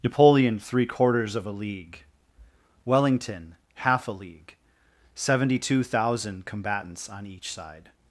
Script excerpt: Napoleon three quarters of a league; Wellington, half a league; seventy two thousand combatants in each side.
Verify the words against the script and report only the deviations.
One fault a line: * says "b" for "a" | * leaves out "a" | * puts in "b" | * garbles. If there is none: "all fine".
* says "on" for "in"